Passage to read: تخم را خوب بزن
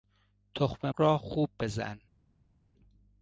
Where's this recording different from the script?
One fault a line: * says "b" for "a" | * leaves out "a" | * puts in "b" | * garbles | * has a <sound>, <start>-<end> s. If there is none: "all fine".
all fine